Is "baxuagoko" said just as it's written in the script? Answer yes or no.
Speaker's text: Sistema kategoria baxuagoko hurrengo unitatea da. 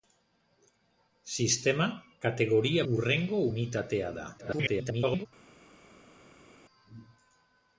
no